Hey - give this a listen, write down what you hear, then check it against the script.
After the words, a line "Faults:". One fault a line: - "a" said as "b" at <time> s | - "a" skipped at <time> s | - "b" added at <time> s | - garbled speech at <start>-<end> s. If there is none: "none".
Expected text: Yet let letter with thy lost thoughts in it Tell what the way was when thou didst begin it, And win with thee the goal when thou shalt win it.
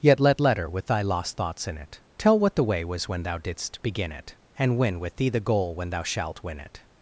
Yet let letter with thy lost thoughts in it Tell what the way was when thou didst begin it, And win with thee the goal when thou shalt win it.
Faults:
none